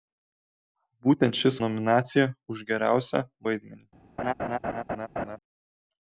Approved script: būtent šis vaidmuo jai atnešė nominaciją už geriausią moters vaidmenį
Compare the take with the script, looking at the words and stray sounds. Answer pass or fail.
fail